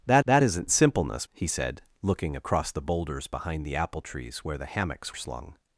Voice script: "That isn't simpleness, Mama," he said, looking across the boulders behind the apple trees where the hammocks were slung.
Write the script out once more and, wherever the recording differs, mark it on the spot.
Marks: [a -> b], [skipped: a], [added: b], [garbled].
"That [added: that] isn't simpleness, [skipped: Mama,"] he said, looking across the boulders behind the apple trees where the hammocks [skipped: were] slung.